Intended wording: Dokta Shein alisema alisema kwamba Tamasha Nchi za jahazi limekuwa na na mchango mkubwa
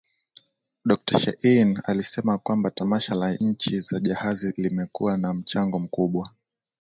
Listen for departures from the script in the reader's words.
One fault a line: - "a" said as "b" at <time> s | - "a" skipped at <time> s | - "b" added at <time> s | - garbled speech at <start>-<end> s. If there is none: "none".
- "alisema" skipped at 2.4 s
- "la" added at 3.1 s
- "na" skipped at 5.3 s